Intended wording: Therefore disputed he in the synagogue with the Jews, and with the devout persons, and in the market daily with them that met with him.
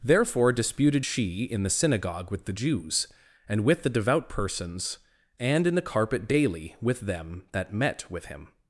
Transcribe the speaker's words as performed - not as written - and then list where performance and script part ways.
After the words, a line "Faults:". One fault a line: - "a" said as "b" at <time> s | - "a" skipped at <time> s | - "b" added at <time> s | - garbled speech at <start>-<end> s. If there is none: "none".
Therefore disputed she in the synagogue with the Jews, and with the devout persons, and in the carpet daily with them that met with him.
Faults:
- "he" said as "she" at 1.0 s
- "market" said as "carpet" at 5.8 s